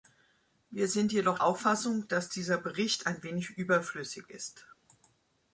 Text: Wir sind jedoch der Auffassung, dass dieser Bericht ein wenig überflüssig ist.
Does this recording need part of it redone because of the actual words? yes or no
yes